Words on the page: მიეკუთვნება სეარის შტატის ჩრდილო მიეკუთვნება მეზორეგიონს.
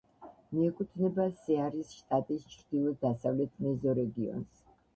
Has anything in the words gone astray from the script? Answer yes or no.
yes